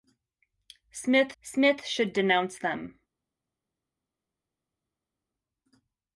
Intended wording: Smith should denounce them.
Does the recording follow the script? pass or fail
fail